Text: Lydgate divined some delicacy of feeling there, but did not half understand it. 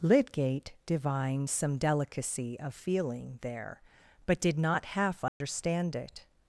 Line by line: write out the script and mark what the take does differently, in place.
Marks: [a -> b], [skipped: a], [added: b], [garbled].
Lydgate divined some delicacy of feeling there, but did not half understand it.